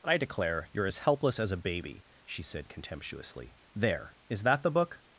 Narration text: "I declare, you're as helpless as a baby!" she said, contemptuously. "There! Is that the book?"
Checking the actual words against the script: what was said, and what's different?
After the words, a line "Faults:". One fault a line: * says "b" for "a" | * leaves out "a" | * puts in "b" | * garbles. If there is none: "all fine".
"I declare, you're as helpless as a baby!" she said, contemptuously. "There! Is that the book?"
Faults:
all fine